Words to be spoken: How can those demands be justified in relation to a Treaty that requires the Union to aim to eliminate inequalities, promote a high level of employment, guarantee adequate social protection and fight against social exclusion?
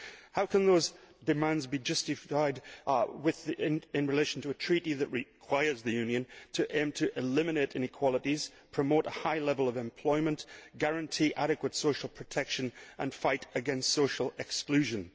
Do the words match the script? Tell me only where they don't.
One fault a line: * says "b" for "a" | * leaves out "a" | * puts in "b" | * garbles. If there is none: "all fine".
all fine